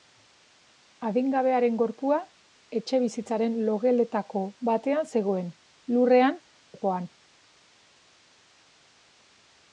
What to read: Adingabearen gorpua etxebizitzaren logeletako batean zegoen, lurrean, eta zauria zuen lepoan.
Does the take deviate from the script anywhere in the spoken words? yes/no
yes